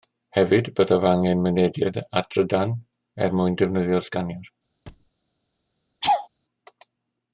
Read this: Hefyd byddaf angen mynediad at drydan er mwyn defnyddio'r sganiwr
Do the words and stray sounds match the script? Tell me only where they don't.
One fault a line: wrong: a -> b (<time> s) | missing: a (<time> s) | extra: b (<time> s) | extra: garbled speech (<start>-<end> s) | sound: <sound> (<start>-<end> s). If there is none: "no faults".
sound: thud (4.9-5.1 s)
sound: laugh (6.0-6.3 s)